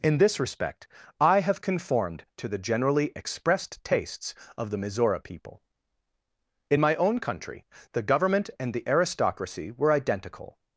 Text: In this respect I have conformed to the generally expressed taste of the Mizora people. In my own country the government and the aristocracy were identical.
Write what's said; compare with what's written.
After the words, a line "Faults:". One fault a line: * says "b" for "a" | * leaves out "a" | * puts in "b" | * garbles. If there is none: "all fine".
In this respect I have conformed to the generally expressed tastes of the Mizora people. In my own country the government and the aristocracy were identical.
Faults:
* says "tastes" for "taste"